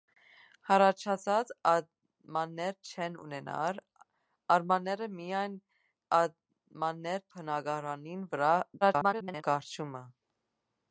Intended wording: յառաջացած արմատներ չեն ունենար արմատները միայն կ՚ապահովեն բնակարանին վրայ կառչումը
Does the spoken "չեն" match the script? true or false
true